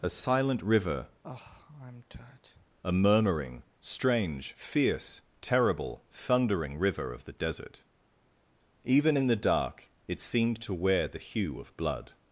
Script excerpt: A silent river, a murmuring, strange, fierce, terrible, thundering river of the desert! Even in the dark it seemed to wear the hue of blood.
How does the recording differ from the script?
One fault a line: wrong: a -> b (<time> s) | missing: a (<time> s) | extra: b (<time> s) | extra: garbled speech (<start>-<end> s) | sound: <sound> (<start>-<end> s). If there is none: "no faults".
sound: sigh (1.2-2.7 s)